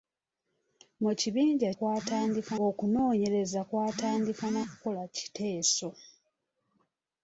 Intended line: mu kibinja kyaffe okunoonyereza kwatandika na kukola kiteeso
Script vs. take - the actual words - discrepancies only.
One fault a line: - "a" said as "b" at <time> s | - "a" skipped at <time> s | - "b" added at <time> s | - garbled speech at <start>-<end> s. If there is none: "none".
- "kyaffe" said as "kwatandika" at 1.8 s